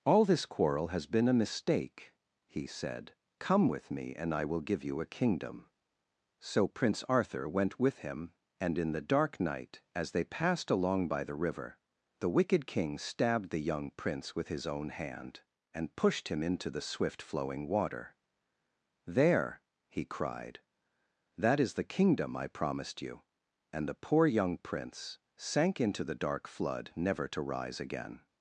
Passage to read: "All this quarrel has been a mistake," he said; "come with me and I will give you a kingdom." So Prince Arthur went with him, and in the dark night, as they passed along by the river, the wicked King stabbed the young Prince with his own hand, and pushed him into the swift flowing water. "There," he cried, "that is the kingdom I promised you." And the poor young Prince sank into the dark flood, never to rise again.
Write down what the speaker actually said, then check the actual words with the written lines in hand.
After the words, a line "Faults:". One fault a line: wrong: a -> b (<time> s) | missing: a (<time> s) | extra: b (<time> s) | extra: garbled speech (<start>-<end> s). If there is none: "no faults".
"All this quarrel has been a mistake," he said; "come with me and I will give you a kingdom." So Prince Arthur went with him, and in the dark night, as they passed along by the river, the wicked King stabbed the young Prince with his own hand, and pushed him into the swift flowing water. "There," he cried, "that is the kingdom I promised you." And the poor young Prince sank into the dark flood, never to rise again.
Faults:
no faults